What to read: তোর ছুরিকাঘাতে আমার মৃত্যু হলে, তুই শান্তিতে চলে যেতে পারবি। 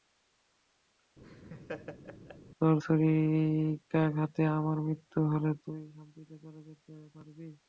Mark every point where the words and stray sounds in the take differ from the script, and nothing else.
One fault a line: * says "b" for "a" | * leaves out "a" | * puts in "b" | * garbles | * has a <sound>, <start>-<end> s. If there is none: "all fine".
* has a laugh, 1.2-2.4 s